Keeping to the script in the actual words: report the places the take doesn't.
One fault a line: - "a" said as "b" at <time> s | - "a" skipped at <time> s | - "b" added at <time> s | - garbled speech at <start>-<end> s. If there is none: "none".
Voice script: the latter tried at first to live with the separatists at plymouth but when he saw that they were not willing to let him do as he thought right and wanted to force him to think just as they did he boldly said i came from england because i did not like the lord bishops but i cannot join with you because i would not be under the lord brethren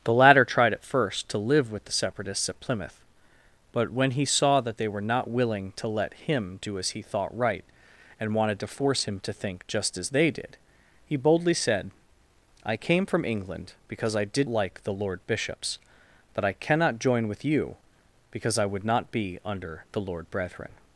- "not" skipped at 14.5 s